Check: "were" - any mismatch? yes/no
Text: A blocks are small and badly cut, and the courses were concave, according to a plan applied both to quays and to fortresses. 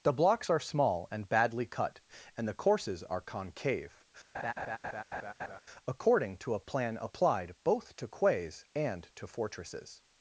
yes